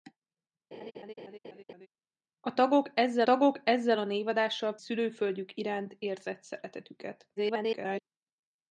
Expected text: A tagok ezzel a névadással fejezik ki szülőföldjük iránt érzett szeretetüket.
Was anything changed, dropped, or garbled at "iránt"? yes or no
no